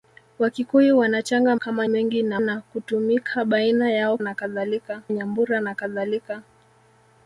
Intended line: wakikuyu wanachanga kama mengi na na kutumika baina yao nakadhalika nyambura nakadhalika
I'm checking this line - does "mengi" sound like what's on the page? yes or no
yes